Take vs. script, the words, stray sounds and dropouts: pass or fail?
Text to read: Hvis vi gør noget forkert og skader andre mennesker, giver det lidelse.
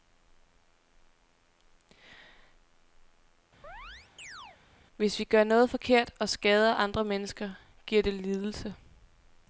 fail